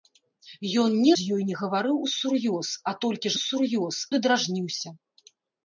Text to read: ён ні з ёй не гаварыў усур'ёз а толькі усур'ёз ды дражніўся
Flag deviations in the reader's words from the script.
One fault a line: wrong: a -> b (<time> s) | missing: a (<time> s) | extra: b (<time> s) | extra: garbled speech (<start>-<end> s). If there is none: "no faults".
no faults